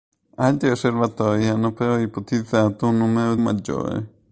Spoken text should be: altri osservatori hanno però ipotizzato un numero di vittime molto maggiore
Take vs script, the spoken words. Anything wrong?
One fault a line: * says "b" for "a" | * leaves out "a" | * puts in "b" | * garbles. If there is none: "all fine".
* leaves out "di vittime molto"